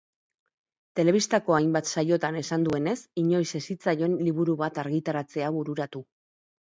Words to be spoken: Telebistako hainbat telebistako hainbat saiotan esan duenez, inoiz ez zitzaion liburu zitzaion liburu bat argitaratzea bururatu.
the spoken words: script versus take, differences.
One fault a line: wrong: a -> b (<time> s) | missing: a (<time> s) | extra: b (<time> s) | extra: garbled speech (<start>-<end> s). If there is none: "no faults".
missing: telebistako hainbat (1.9 s)
missing: zitzaion liburu (4.6 s)